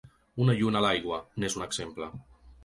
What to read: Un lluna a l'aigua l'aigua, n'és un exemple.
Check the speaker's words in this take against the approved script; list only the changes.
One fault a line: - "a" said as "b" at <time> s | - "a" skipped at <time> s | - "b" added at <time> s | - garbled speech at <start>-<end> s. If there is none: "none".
- "Un" said as "Una" at 0.5 s
- "l'aigua" skipped at 1.2 s